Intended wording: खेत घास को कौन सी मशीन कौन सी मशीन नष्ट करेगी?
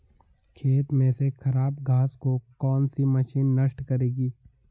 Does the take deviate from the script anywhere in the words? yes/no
yes